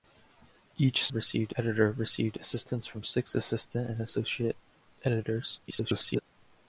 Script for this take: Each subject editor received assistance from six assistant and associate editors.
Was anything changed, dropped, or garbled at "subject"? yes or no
yes